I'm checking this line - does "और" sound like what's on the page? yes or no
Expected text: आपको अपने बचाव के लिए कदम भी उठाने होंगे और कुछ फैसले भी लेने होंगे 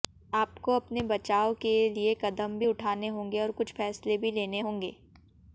yes